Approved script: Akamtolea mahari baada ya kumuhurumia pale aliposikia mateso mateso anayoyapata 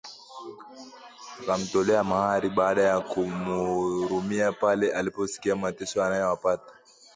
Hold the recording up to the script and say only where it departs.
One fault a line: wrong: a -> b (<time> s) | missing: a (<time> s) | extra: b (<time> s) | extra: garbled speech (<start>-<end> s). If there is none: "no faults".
missing: mateso (6.0 s)